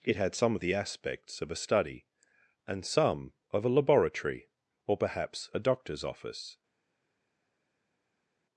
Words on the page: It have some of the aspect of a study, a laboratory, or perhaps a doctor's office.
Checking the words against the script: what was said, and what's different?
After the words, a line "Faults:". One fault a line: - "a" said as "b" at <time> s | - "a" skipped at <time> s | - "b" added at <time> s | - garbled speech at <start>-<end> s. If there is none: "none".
It had some of the aspects of a study, and some of a laboratory, or perhaps a doctor's office.
Faults:
- "have" said as "had" at 0.1 s
- "aspect" said as "aspects" at 0.7 s
- "and some of" added at 2.7 s